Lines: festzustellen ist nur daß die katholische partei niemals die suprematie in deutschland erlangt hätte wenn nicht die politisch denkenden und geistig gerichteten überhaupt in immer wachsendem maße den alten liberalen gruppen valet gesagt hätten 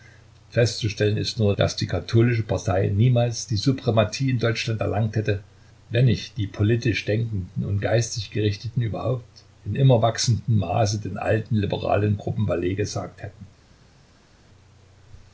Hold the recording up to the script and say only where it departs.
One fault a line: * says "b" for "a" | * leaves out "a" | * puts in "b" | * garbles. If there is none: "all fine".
all fine